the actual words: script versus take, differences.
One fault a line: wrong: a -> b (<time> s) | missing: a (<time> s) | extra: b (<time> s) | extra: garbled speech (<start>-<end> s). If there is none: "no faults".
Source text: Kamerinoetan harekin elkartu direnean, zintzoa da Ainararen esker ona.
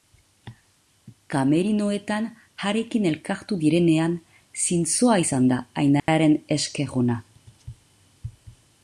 extra: izan (5.2 s)